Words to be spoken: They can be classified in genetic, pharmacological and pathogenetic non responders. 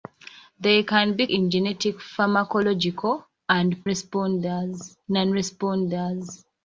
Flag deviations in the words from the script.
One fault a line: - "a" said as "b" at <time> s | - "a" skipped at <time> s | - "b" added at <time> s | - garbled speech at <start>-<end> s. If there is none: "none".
- "classified" skipped at 1.3 s
- "pathogenetic" said as "responders" at 3.8 s